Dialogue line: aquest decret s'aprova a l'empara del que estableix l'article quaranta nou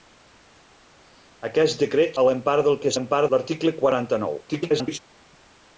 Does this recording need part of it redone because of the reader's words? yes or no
yes